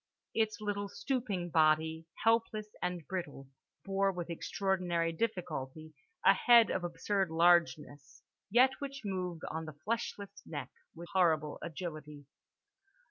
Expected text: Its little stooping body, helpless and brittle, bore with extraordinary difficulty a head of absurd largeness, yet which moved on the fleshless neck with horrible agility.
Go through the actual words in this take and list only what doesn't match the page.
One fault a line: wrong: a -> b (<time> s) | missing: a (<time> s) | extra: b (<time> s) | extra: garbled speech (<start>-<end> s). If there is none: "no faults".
no faults